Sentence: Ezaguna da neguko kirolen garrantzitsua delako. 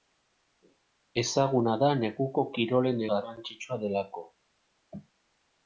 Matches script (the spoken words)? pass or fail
pass